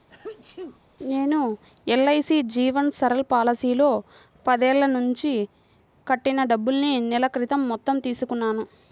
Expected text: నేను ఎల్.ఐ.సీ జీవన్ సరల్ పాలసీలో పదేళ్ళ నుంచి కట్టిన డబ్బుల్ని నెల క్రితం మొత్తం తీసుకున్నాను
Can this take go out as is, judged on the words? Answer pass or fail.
pass